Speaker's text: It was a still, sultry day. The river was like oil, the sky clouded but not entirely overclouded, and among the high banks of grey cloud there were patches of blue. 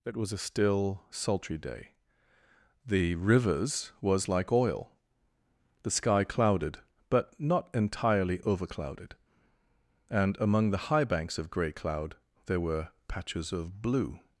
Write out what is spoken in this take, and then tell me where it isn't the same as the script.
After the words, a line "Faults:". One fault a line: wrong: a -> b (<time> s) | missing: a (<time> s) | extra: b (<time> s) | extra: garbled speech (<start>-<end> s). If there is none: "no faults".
It was a still, sultry day. The rivers was like oil, the sky clouded but not entirely overclouded, and among the high banks of grey cloud there were patches of blue.
Faults:
wrong: river -> rivers (3.1 s)